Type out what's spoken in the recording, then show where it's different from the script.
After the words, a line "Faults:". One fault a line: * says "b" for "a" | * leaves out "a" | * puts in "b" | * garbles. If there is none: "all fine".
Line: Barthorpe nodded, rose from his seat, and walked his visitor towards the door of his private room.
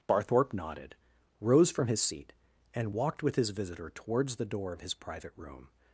Barthorpe nodded, rose from his seat, and walked with his visitor towards the door of his private room.
Faults:
* puts in "with"